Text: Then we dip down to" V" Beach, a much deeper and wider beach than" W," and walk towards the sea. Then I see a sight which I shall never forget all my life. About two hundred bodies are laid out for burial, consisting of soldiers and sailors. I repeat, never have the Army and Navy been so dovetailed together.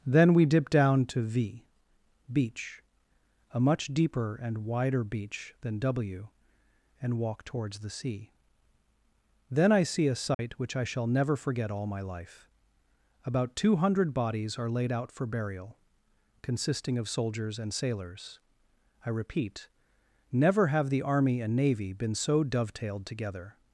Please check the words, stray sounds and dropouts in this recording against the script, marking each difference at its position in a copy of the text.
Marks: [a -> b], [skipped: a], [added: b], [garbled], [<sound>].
Then we dip down to" V" Beach, a much deeper and wider beach than" W," and walk towards the sea. Then I see a sight [dropout] which I shall never forget all my life. About two hundred bodies are laid out for burial, consisting of soldiers and sailors. I repeat, never have the Army and Navy been so dovetailed together.